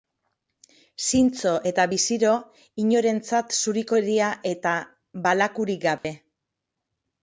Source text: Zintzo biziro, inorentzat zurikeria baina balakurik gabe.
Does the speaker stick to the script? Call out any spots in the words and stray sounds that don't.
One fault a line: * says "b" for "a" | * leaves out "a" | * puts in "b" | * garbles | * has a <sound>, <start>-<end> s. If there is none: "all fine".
* puts in "eta"
* says "eta" for "baina"
* has a dropout, 6.0-6.0 s